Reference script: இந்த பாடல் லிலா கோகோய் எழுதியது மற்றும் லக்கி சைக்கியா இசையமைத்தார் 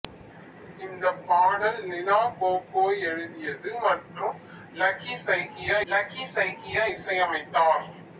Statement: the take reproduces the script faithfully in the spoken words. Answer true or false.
false